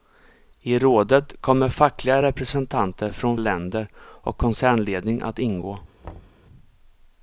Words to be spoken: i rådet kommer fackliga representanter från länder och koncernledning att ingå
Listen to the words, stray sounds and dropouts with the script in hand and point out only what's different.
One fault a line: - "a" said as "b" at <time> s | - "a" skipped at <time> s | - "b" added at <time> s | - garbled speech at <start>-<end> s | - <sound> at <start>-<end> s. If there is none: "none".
- thud at 6.0-6.4 s